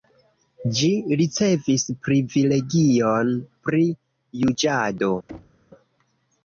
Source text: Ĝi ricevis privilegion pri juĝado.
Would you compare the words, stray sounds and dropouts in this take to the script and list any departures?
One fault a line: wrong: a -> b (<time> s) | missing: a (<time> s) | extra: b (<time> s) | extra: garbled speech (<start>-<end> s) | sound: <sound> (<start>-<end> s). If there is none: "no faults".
sound: thud (5.3-5.7 s)